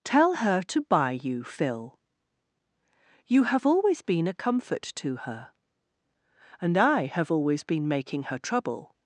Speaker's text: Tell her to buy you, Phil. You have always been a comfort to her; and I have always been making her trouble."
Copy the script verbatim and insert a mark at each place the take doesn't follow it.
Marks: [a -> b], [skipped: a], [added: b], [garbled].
Tell her to buy you, Phil. You have always been a comfort to her; and I have always been making her trouble."